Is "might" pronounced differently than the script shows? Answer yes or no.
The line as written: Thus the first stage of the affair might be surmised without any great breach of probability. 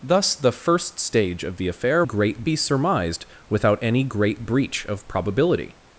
yes